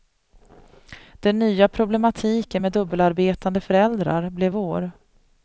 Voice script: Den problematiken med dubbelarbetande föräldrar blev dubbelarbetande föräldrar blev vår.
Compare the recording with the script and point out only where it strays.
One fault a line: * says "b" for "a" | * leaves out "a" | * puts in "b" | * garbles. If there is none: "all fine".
* puts in "nya"
* leaves out "dubbelarbetande föräldrar blev"